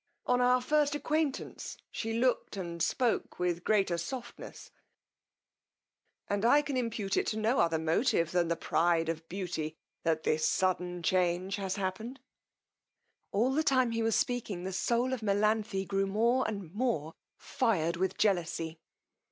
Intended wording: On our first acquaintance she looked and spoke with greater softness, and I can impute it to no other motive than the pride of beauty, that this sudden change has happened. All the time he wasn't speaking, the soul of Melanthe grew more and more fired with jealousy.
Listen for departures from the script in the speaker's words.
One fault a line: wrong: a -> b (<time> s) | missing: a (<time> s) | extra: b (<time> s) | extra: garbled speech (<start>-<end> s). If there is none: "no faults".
wrong: wasn't -> was (14.0 s)